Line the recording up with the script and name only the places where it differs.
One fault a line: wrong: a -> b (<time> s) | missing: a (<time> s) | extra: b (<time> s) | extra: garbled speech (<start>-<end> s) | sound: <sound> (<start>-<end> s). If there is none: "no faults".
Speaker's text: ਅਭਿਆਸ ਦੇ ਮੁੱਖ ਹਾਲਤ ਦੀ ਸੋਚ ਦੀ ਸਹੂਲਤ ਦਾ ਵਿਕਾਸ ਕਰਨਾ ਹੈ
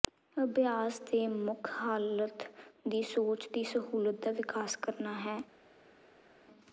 no faults